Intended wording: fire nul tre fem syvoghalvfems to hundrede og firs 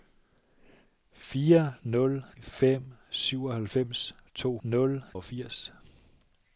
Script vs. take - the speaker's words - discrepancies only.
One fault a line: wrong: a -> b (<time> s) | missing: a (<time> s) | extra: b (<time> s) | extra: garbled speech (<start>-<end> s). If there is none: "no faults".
missing: tre (2.2 s)
wrong: hundrede -> nul (4.6 s)